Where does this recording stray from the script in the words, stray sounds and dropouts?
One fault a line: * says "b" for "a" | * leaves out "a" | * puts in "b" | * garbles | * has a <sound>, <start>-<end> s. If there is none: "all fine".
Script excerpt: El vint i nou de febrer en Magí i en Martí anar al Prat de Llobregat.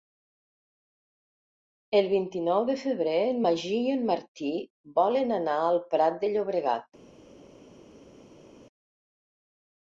* puts in "volen"